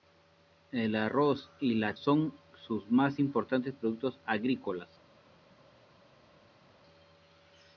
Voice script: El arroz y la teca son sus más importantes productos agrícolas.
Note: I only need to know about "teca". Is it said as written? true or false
false